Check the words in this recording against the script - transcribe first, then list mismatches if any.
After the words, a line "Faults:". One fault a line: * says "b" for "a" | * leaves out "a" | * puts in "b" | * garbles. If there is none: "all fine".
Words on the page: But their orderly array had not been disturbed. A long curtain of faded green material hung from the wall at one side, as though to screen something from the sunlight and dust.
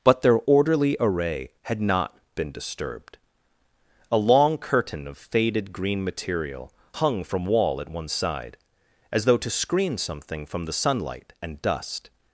But their orderly array had not been disturbed. A long curtain of faded green material hung from wall at one side, as though to screen something from the sunlight and dust.
Faults:
* leaves out "the"